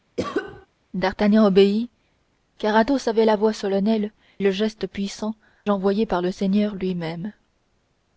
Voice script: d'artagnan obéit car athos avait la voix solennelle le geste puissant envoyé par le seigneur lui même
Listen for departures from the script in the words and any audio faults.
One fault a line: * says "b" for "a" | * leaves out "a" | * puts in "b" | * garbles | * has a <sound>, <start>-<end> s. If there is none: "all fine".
* has a cough, 0.2-0.7 s